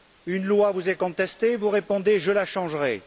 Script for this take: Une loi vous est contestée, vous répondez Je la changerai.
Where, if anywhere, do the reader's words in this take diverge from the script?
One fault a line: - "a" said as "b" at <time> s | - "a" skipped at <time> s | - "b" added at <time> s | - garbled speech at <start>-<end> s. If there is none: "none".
none